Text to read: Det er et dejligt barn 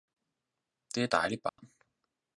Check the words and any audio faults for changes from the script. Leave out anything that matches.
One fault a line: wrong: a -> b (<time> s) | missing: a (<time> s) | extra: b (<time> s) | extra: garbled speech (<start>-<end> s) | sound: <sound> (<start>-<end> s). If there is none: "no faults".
missing: et (1.1 s)
sound: dropout (1.5-1.6 s)